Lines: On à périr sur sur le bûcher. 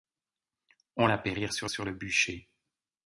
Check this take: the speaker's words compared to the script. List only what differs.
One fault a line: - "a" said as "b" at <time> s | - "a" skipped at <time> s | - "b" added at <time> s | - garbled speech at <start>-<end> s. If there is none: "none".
none